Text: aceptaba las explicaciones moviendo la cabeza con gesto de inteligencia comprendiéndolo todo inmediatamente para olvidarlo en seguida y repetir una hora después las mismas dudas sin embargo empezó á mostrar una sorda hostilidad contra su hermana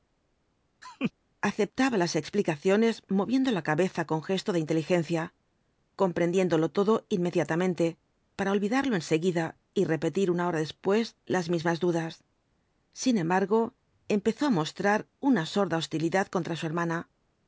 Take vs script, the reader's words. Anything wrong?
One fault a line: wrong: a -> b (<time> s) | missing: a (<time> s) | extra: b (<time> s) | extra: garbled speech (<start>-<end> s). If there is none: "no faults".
no faults